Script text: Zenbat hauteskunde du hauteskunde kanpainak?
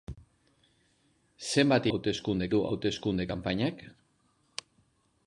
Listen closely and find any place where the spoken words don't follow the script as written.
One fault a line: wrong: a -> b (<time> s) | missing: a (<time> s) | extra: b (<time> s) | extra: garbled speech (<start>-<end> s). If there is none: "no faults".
no faults